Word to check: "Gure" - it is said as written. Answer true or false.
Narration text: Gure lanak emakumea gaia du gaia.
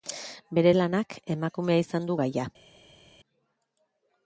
false